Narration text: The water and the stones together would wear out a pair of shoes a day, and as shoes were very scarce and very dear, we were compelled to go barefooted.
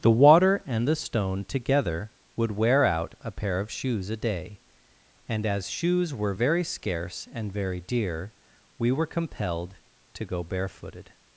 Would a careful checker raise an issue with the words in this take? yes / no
yes